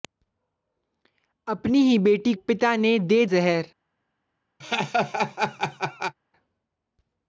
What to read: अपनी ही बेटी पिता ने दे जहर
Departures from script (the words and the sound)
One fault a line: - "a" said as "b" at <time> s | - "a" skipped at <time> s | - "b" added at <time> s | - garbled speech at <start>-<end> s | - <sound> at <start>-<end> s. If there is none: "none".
- laugh at 4.6-6.2 s